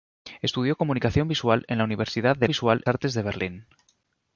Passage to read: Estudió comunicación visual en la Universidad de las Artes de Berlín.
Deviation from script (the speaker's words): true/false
true